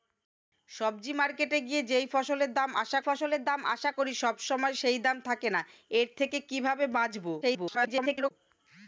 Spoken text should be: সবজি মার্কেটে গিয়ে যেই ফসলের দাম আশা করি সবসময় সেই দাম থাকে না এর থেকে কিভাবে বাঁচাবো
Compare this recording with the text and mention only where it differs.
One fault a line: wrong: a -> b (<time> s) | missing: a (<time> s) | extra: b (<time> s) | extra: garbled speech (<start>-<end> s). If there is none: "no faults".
extra: ফসলের দাম আশা (3.1 s)
extra: garbled speech (7.4-8.3 s)